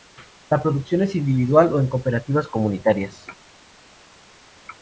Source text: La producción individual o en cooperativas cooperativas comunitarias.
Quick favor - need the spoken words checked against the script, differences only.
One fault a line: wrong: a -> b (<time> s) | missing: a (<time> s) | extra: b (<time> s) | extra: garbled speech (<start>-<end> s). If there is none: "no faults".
extra: es (1.0 s)
missing: cooperativas (2.5 s)